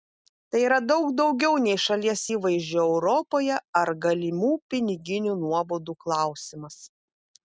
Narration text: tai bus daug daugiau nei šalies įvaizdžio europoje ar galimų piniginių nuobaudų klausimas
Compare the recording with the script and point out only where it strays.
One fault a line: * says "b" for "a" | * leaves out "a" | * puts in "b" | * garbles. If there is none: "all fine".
* says "yra" for "bus"